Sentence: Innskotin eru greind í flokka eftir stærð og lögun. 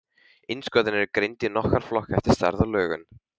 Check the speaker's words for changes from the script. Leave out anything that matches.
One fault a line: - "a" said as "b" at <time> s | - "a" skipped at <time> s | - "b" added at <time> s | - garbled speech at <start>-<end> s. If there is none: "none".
- "nokkra" added at 1.6 s